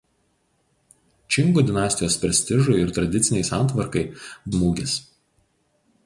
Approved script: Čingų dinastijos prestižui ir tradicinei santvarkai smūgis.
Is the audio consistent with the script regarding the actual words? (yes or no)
yes